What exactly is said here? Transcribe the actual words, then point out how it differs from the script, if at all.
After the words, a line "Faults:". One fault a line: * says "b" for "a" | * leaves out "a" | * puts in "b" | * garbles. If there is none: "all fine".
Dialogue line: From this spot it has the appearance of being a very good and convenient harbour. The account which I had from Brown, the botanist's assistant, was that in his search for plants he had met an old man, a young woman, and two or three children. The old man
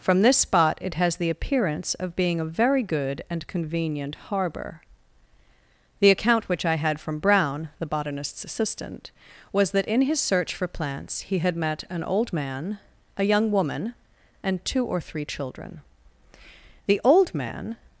From this spot it has the appearance of being a very good and convenient harbour. The account which I had from Brown, the botanist's assistant, was that in his search for plants he had met an old man, a young woman, and two or three children. The old man
Faults:
all fine